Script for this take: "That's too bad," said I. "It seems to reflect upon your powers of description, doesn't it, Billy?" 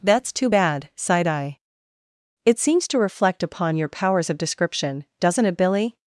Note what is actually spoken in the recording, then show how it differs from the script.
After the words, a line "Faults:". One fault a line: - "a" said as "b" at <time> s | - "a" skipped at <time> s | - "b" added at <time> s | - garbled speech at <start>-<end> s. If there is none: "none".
"That's too bad," sighed I. "It seems to reflect upon your powers of description, doesn't it, Billy?"
Faults:
- "said" said as "sighed" at 0.9 s